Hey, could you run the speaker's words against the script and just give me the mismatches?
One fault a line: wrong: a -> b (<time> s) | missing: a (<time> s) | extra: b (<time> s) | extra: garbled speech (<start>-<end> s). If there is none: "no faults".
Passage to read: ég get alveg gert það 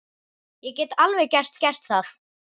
extra: gert (1.7 s)